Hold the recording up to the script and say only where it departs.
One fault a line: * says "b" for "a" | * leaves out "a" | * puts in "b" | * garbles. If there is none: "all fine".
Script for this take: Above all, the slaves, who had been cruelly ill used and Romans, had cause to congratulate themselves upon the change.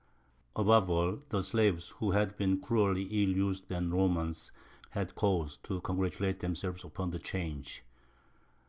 all fine